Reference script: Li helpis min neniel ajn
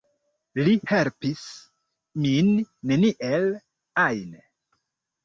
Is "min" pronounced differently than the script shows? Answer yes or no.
no